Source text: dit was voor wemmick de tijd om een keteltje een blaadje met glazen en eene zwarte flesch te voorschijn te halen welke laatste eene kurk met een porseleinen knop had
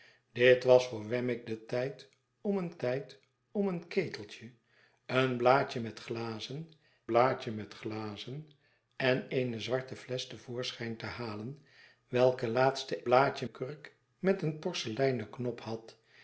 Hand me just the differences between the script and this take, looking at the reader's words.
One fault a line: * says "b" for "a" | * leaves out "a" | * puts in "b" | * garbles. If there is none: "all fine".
* puts in "tijd om een"
* puts in "blaadje met glazen"
* says "blaadje" for "eene"